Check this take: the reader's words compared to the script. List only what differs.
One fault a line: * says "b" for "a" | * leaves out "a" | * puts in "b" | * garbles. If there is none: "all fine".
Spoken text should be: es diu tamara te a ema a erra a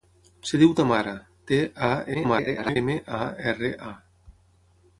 * garbles